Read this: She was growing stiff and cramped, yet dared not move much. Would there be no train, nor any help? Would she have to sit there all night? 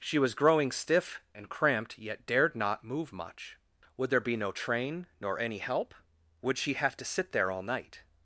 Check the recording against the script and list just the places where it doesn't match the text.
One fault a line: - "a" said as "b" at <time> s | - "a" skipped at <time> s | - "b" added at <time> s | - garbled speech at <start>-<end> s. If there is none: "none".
none